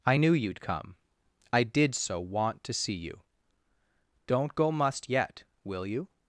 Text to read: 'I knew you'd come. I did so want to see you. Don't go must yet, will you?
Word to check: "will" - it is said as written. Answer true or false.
true